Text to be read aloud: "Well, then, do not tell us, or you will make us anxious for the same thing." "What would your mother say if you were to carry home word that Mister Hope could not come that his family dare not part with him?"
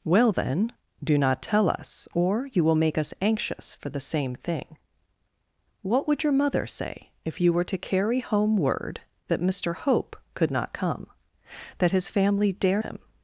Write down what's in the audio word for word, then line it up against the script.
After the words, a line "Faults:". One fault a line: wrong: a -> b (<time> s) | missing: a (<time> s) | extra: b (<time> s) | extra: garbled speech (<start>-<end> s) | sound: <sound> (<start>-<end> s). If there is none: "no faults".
"Well, then, do not tell us, or you will make us anxious for the same thing." "What would your mother say if you were to carry home word that Mister Hope could not come that his family dare him?"
Faults:
missing: not part with (12.8 s)